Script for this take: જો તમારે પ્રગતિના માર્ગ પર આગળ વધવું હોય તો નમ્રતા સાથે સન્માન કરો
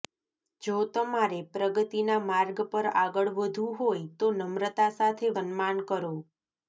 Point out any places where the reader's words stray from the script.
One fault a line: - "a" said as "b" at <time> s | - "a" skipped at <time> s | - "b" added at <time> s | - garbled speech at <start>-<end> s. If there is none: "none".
none